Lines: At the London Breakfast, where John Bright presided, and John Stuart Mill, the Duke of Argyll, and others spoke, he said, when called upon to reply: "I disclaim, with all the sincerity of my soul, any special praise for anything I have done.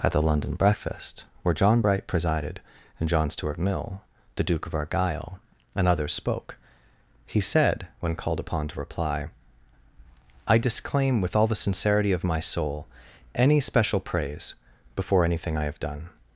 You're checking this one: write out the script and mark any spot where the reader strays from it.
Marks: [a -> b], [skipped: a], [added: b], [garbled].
At the London Breakfast, where John Bright presided, and John Stuart Mill, the Duke of Argyll, and others spoke, he said, when called upon to reply: "I disclaim, with all the sincerity of my soul, any special praise [for -> before] anything I have done.